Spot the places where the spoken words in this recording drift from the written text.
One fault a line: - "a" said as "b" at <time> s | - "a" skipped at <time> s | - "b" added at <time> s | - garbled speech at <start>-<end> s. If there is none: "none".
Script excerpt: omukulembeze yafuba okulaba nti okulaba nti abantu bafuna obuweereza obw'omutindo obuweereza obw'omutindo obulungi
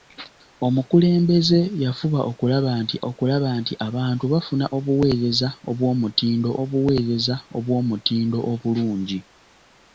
none